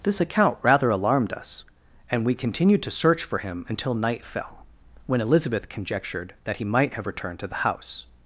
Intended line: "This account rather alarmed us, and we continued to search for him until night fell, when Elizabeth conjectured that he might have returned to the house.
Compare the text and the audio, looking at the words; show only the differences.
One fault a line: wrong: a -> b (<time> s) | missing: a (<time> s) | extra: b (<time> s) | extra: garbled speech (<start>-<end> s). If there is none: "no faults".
no faults